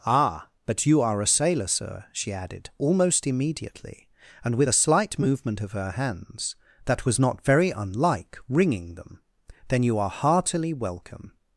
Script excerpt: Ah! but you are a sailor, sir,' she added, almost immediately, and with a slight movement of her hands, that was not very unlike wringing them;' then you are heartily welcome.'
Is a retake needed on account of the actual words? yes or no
no